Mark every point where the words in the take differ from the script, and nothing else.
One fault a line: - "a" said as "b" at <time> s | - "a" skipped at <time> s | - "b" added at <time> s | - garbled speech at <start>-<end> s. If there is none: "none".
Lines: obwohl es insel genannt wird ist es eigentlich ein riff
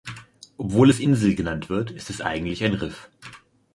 none